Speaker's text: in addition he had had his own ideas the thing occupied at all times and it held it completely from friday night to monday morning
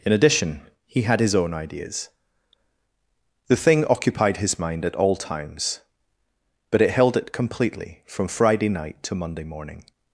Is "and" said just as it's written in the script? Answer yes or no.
no